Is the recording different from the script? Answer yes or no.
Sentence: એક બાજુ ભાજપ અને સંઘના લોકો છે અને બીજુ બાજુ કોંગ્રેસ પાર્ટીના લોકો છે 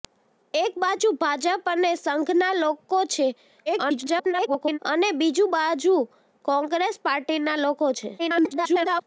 yes